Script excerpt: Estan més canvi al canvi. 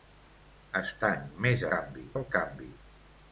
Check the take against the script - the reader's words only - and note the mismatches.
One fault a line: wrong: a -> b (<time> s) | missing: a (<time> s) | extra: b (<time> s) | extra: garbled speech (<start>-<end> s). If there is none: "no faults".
no faults